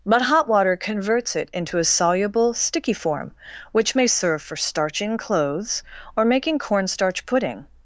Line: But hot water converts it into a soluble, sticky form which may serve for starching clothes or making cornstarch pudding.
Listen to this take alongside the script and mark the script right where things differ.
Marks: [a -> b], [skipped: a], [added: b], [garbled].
But hot water converts it into a soluble, sticky form which may serve for starching clothes or making cornstarch pudding.